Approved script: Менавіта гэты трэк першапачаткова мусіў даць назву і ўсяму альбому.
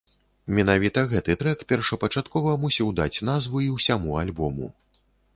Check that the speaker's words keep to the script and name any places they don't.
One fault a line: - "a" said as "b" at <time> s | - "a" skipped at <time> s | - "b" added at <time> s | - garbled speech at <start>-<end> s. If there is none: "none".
none